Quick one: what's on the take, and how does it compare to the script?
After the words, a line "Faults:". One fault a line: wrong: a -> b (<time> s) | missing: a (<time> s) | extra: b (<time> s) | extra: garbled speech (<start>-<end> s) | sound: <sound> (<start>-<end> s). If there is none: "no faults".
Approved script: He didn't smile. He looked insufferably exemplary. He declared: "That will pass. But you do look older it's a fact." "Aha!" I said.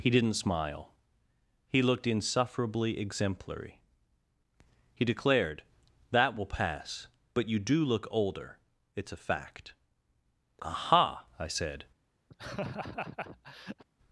He didn't smile. He looked insufferably exemplary. He declared: "That will pass. But you do look older it's a fact." "Aha!" I said.
Faults:
sound: laugh (12.3-13.8 s)